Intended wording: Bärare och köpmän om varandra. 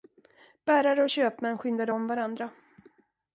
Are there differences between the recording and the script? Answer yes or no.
yes